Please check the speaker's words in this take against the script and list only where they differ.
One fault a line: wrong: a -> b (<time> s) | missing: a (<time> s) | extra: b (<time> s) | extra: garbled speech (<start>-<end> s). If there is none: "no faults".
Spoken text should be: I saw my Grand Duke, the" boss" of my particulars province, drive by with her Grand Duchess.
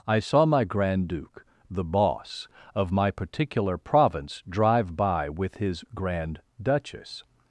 wrong: particulars -> particular (3.1 s)
wrong: her -> his (5.6 s)